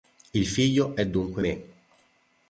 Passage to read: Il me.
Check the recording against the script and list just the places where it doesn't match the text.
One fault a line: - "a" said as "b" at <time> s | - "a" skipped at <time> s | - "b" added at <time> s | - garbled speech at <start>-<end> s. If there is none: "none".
- "figlio è dunque" added at 0.5 s